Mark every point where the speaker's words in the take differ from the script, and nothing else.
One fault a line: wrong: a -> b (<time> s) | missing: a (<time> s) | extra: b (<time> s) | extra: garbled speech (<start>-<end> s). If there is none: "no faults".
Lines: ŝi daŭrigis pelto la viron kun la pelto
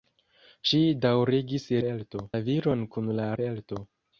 no faults